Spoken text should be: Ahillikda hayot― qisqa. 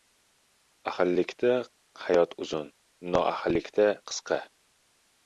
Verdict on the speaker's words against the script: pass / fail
fail